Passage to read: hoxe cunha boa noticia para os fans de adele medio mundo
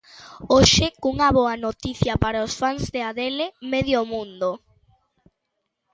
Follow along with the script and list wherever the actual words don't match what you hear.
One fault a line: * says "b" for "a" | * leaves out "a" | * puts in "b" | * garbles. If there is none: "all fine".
all fine